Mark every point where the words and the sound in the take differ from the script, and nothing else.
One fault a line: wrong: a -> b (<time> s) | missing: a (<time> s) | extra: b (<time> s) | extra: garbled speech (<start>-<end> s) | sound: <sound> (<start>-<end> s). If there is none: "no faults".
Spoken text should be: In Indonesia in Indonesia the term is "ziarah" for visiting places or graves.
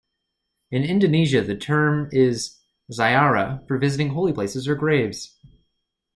missing: in Indonesia (1.4 s)
extra: holy (4.1 s)